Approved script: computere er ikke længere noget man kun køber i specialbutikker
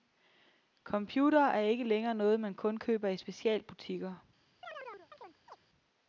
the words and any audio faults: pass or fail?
fail